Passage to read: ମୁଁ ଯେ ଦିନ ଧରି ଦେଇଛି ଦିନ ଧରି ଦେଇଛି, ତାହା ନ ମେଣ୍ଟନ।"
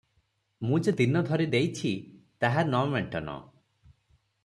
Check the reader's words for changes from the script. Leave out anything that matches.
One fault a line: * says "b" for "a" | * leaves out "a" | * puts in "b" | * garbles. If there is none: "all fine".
* leaves out "ଦିନ ଧରି ଦେଇଛି"